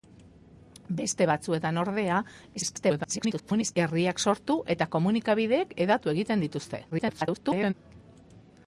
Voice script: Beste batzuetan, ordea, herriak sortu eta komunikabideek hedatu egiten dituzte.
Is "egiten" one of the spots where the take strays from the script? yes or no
no